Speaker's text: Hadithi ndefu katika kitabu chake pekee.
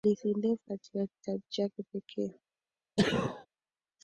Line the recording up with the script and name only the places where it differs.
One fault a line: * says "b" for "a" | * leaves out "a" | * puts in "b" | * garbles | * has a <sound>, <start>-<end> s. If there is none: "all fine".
* has a sneeze, 3.0-3.5 s